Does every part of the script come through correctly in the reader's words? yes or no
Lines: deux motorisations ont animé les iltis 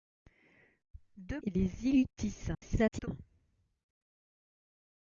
no